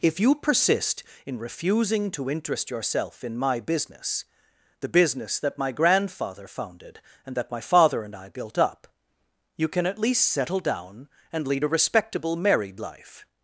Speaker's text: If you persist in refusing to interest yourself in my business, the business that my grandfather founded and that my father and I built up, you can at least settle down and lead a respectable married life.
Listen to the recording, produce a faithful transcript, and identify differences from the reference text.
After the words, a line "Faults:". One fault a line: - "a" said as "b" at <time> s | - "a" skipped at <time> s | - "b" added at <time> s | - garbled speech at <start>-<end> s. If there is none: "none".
If you persist in refusing to interest yourself in my business, the business that my grandfather founded and that my father and I built up, you can at least settle down and lead a respectable married life.
Faults:
none